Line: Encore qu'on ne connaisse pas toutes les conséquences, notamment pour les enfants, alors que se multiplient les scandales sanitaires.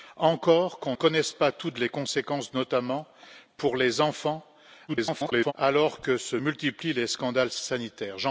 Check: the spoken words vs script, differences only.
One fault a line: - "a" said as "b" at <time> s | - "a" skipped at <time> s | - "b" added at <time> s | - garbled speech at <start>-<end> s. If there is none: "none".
- "ne" skipped at 0.9 s
- garbled speech at 4.9-5.5 s